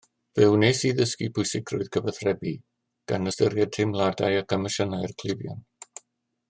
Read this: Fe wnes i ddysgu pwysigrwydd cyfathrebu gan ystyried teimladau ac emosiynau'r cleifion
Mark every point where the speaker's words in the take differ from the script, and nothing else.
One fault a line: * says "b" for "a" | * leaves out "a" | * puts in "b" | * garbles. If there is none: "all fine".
all fine